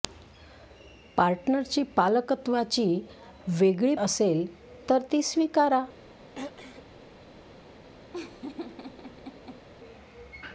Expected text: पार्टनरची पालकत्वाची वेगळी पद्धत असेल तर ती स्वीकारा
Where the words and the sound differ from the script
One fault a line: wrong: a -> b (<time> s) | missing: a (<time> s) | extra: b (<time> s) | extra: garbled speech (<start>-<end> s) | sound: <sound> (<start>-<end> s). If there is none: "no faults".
missing: पद्धत (3.9 s)
sound: throat clearing (6.4-6.8 s)
sound: laugh (8.1-9.7 s)